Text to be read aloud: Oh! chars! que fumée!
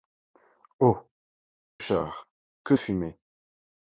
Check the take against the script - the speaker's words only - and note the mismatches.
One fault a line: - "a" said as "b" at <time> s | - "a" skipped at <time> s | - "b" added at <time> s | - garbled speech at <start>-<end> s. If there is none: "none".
none